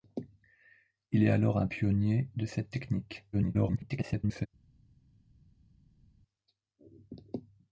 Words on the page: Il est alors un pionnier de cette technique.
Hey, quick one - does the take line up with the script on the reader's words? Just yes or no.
no